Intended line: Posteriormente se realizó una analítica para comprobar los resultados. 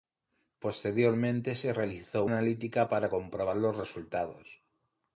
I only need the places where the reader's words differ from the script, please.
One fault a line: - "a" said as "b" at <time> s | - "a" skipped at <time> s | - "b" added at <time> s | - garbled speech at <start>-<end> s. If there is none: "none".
- "una" skipped at 2.2 s